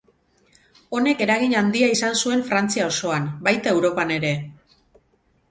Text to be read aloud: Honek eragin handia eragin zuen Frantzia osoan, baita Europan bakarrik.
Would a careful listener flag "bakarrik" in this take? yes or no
yes